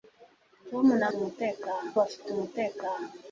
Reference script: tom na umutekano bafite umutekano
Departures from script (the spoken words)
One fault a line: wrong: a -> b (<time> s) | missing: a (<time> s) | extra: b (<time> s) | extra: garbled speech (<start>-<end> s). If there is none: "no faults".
no faults